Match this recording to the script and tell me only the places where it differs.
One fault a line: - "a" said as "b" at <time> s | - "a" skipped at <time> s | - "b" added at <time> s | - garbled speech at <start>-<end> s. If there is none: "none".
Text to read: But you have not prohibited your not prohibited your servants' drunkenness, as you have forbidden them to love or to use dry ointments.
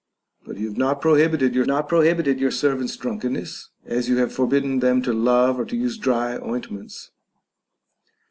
none